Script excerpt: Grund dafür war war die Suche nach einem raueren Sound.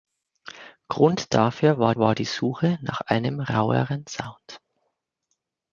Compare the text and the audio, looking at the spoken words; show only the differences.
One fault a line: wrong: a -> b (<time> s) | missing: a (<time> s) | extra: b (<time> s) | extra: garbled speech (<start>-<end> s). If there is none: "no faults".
no faults